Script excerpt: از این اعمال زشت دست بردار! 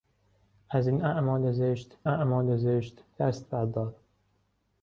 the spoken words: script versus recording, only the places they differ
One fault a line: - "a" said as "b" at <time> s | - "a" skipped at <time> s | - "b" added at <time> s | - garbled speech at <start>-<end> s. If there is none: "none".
- "اعمال زشت" added at 2.1 s